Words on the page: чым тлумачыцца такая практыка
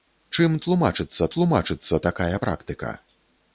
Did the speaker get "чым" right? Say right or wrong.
right